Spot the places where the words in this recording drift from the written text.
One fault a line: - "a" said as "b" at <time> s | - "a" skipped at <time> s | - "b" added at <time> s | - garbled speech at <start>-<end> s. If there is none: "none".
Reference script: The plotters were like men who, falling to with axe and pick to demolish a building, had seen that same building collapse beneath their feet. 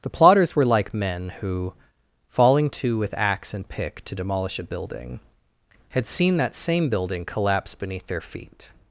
none